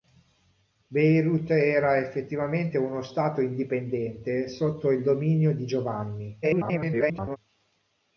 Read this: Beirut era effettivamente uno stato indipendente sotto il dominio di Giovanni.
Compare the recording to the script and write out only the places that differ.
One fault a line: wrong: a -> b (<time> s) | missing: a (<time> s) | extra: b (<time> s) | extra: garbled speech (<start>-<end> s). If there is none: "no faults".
extra: garbled speech (6.4-7.4 s)